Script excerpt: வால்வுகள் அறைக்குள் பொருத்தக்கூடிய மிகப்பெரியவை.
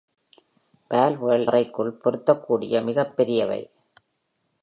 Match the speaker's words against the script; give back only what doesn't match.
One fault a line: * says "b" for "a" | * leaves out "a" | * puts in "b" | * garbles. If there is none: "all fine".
all fine